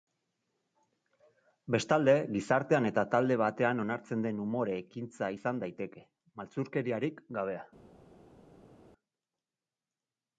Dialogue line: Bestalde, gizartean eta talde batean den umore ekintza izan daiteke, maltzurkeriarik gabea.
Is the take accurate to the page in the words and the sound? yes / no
no